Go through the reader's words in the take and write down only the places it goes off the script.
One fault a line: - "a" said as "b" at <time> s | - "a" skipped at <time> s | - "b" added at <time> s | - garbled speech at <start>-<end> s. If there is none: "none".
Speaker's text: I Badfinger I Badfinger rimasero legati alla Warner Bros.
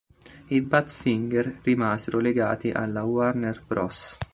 - "I Badfinger" skipped at 1.6 s